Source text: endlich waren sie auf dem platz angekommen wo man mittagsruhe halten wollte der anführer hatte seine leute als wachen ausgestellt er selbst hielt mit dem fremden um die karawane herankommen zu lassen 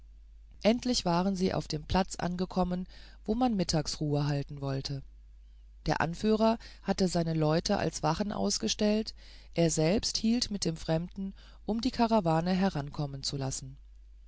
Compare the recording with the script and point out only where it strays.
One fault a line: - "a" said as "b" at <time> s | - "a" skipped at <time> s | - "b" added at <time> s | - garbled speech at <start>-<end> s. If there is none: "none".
none